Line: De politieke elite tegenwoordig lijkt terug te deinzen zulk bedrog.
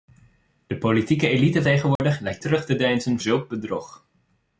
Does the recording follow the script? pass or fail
pass